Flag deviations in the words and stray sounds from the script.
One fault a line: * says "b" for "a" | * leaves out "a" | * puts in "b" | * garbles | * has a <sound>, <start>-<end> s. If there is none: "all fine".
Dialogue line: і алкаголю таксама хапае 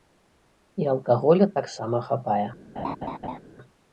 * has a laugh, 2.8-3.4 s